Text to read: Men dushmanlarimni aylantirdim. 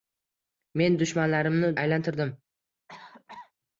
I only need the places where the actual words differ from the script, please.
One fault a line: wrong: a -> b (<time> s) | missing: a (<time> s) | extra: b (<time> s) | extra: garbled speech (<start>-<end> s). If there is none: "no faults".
no faults